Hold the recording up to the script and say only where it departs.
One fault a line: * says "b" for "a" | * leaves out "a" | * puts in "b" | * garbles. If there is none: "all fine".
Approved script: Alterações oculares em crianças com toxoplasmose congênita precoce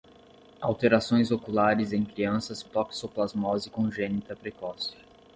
* leaves out "com"